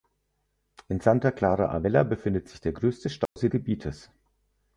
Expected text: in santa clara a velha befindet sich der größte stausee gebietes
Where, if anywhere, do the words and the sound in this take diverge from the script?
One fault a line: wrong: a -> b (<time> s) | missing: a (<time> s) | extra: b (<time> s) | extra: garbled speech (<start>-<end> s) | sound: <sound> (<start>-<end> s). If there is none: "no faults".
sound: dropout (3.3-3.4 s)